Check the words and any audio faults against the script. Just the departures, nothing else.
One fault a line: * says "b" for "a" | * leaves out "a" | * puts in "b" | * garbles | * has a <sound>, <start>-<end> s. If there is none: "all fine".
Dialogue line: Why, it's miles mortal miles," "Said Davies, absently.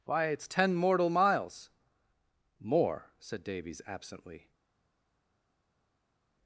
* says "ten" for "miles"
* puts in "More"